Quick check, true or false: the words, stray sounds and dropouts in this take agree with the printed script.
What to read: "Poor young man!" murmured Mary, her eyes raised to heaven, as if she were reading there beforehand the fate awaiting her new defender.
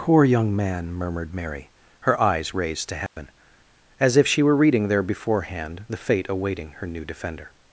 false